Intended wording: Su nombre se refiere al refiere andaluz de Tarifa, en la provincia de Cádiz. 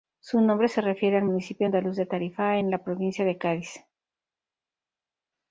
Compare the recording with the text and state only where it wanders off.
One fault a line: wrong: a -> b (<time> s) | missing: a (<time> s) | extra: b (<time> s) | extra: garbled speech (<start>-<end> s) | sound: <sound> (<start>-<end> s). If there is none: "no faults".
wrong: refiere -> municipio (1.2 s)